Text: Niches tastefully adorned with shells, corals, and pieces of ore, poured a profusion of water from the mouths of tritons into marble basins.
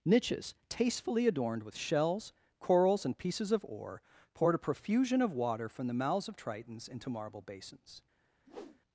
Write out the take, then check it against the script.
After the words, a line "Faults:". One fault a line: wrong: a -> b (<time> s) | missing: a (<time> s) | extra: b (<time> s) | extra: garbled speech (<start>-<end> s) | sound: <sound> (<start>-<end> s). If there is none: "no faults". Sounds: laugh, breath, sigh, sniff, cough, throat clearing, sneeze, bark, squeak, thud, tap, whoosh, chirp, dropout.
Niches tastefully adorned with shells, corals, and pieces of ore, poured a profusion of water from the mouths of tritons into marble basins.
Faults:
sound: whoosh (8.5-8.8 s)